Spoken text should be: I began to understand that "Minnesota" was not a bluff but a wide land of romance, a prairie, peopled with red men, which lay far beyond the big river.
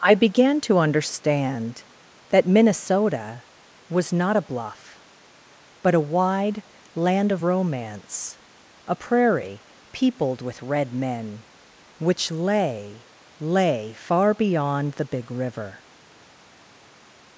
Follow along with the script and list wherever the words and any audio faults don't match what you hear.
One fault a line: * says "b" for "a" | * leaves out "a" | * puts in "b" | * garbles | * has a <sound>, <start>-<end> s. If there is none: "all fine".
* puts in "lay"